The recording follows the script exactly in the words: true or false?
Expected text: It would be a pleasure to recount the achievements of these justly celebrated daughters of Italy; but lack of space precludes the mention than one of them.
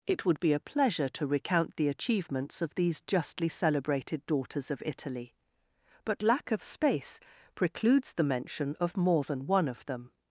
false